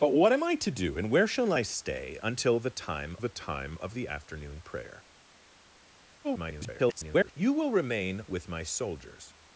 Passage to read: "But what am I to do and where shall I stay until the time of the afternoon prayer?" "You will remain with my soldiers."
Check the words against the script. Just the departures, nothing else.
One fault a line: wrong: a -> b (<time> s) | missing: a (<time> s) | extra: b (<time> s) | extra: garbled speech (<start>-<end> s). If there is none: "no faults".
extra: the time (3.2 s)
extra: garbled speech (6.2-7.3 s)